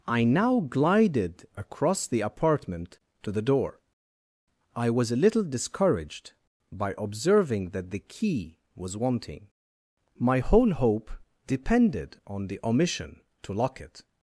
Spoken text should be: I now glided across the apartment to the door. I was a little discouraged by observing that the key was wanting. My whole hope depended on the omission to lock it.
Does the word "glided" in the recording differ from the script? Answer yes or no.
no